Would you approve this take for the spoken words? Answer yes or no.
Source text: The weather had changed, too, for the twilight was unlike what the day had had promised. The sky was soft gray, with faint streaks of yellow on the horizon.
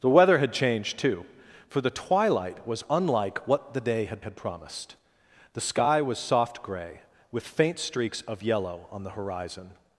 yes